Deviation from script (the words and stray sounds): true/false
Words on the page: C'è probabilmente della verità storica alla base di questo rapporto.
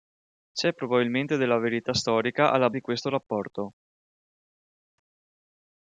true